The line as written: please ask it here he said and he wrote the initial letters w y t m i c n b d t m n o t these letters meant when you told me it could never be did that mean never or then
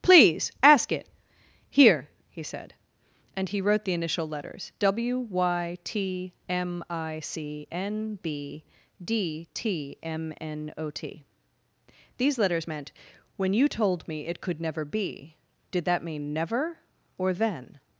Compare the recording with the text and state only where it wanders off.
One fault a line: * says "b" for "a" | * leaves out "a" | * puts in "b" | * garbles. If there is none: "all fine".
all fine